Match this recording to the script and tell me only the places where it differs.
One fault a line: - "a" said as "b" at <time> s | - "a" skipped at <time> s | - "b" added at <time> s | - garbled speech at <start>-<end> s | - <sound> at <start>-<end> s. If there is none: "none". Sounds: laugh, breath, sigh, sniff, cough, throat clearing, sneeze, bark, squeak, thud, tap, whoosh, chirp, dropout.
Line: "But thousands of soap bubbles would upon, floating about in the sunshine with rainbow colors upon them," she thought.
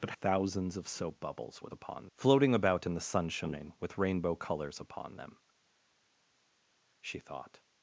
none